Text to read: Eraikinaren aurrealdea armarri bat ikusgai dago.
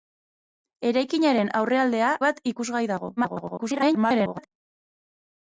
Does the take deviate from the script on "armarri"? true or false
true